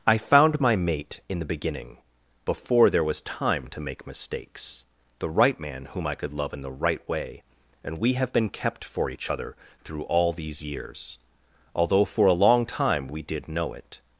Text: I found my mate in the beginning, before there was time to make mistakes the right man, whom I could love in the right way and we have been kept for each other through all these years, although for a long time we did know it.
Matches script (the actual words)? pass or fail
pass